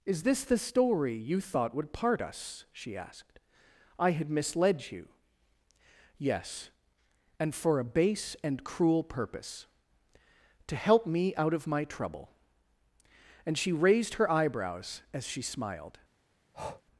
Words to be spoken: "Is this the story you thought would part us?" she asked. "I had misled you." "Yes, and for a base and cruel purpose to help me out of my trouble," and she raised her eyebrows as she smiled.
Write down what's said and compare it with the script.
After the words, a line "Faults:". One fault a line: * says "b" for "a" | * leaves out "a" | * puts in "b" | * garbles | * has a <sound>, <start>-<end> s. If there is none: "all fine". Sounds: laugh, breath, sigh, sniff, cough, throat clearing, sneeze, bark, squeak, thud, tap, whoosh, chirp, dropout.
"Is this the story you thought would part us?" she asked. "I had misled you." "Yes, and for a base and cruel purpose to help me out of my trouble," and she raised her eyebrows as she smiled.
Faults:
* has a breath, 16.5-16.8 s